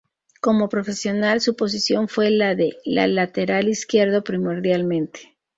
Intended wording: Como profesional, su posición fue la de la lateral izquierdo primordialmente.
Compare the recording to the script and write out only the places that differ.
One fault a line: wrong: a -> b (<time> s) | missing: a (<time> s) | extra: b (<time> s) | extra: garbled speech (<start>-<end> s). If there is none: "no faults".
no faults